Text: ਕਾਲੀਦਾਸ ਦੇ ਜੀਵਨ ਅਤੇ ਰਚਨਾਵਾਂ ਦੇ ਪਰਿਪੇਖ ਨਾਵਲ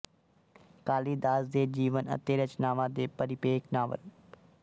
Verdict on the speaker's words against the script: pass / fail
pass